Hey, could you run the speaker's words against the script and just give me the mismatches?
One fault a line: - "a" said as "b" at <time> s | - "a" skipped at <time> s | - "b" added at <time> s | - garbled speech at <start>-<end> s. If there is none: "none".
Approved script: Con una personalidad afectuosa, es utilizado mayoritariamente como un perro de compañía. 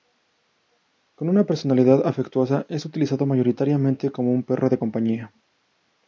none